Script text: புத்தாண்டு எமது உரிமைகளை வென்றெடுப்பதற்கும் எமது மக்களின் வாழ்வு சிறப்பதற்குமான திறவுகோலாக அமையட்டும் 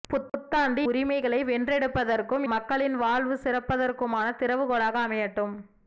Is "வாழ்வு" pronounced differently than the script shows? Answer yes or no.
no